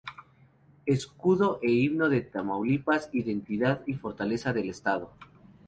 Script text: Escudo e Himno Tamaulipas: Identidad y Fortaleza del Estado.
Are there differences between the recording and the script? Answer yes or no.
yes